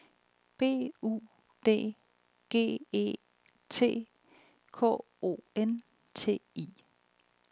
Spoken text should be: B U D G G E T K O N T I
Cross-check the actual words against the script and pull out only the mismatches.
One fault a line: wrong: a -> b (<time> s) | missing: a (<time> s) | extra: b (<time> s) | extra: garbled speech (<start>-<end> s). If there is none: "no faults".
missing: G (2.8 s)